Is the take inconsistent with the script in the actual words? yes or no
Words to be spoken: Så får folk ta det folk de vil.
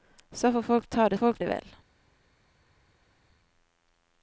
no